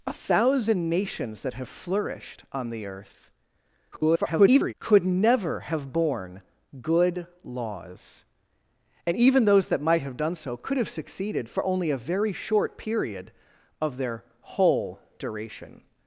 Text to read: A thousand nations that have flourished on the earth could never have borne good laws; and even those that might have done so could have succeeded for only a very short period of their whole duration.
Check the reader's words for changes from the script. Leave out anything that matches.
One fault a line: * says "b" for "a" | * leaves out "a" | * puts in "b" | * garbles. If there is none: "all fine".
* garbles